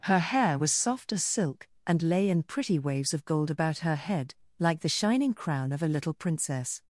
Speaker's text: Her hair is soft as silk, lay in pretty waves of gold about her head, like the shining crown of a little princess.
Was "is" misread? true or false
true